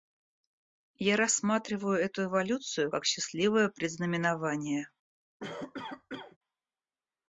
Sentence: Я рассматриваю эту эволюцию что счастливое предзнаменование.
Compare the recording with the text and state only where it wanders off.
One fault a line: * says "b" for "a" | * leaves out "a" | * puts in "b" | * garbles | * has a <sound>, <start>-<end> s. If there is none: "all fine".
* says "как" for "что"
* has a cough, 5.4-6.4 s